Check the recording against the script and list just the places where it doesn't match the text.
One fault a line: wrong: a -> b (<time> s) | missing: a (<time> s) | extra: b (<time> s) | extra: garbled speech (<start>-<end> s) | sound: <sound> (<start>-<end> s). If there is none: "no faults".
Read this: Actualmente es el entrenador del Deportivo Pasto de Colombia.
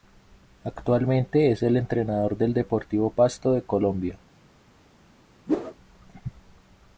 sound: whoosh (5.5-5.8 s)